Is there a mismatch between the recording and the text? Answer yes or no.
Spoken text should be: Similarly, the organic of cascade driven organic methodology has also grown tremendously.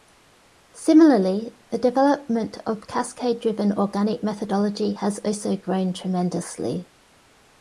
yes